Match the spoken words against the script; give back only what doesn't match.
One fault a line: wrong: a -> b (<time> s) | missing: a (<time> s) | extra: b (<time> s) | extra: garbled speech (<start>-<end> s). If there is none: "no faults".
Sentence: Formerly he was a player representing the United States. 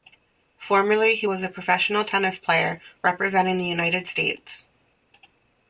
extra: professional tennis (1.5 s)